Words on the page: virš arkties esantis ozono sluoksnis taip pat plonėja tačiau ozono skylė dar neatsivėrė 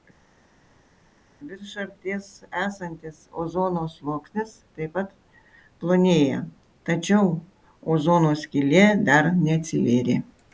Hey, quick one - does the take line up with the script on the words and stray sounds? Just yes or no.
yes